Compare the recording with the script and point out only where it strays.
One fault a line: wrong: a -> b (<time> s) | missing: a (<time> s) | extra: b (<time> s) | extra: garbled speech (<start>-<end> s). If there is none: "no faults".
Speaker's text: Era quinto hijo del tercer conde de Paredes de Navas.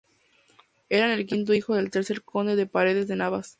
extra: el (1.1 s)